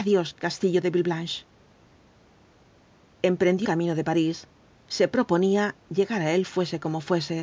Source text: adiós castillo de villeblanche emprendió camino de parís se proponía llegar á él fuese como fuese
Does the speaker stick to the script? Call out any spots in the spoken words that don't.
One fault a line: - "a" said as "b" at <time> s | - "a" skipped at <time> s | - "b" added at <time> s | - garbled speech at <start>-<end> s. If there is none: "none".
none